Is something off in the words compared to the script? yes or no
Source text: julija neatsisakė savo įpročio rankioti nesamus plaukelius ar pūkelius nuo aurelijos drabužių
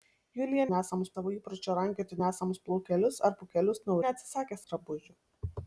yes